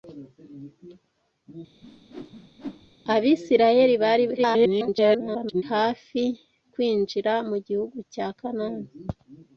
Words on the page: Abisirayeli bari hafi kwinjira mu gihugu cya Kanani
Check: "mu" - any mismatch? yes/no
no